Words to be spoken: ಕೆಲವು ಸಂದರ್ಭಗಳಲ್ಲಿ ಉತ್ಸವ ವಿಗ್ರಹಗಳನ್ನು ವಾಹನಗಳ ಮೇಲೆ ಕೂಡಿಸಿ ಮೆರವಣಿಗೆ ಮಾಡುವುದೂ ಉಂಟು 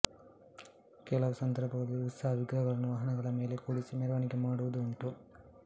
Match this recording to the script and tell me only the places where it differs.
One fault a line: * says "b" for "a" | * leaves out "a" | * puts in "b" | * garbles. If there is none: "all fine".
all fine